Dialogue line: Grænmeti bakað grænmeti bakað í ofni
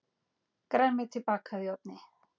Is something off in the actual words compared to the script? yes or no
yes